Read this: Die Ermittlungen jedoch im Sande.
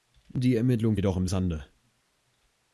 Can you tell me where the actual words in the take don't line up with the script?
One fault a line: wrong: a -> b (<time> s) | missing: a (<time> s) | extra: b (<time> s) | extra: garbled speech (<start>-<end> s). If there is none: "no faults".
no faults